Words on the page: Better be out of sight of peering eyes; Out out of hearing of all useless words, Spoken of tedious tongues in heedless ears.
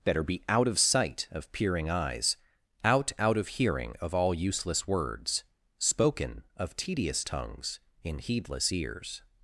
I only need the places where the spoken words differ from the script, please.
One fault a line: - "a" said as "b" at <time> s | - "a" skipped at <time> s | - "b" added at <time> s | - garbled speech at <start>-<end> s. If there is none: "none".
none